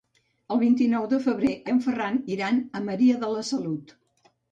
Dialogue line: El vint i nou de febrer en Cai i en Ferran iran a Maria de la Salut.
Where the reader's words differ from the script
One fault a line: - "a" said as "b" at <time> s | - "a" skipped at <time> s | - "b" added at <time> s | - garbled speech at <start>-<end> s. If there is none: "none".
- "en Cai" skipped at 1.5 s